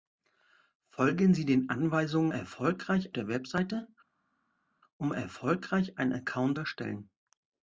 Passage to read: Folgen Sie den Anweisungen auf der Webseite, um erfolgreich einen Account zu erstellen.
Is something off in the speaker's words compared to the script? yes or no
yes